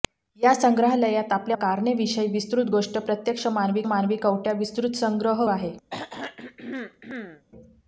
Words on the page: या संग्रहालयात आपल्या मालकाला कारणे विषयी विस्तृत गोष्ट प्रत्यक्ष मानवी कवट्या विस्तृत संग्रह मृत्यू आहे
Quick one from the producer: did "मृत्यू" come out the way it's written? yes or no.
no